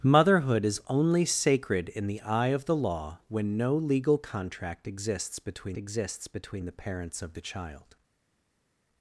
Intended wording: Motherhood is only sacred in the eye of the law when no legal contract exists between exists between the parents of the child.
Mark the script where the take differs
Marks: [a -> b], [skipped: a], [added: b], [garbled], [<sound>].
Motherhood is only sacred in the eye of the law when no legal contract exists between exists between the parents of the child.